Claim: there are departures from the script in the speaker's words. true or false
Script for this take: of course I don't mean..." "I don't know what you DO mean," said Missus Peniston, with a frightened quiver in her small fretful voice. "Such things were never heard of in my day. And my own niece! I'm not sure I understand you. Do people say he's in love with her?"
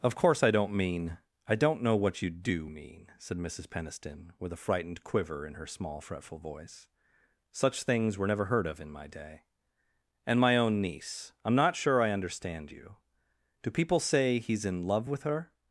false